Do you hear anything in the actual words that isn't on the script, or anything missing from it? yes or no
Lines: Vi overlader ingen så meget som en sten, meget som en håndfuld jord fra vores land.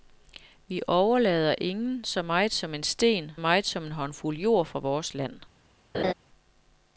no